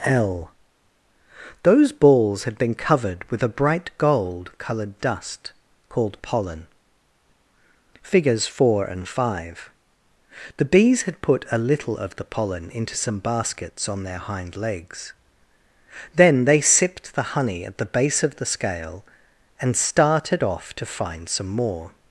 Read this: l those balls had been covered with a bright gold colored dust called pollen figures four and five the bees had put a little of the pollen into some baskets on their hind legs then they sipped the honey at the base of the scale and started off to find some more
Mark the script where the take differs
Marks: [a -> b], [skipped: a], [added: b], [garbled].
l those balls had been covered with a bright gold colored dust called pollen figures four and five the bees had put a little of the pollen into some baskets on their hind legs then they sipped the honey at the base of the scale and started off to find some more